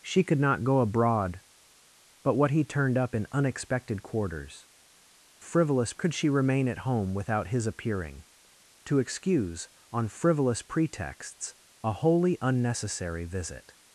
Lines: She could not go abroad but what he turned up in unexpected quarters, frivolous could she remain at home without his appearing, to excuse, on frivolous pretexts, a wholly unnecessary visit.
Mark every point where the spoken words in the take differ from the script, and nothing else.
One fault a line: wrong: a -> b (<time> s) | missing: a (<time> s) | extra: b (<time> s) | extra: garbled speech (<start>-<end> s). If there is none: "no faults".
no faults